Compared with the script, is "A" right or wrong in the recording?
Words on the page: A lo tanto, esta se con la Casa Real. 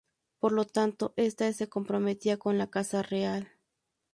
wrong